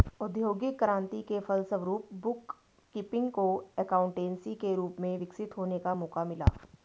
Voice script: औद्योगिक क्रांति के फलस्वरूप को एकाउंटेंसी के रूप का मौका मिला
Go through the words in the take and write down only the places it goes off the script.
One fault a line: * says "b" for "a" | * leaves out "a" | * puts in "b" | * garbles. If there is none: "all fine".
* puts in "बुक कीपिंग"
* puts in "में विकसित होने"